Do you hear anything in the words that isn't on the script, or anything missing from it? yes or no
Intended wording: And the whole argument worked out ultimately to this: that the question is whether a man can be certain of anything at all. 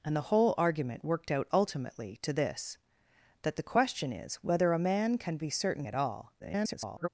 yes